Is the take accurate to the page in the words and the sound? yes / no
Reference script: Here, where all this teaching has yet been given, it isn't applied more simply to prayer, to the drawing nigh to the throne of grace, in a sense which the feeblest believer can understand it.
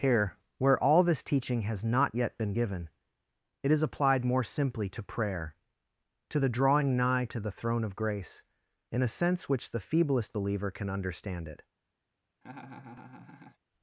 no